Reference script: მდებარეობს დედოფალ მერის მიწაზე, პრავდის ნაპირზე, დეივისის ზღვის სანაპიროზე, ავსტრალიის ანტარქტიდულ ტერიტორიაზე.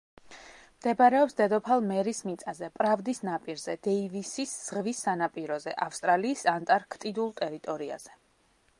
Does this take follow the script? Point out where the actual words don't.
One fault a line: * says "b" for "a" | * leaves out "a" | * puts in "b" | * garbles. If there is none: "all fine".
all fine